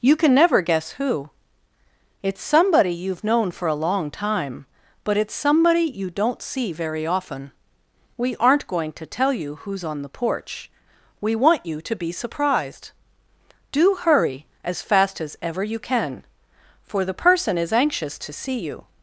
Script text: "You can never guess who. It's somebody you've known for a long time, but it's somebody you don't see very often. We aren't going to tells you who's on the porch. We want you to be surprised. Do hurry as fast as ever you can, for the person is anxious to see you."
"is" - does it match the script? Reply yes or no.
yes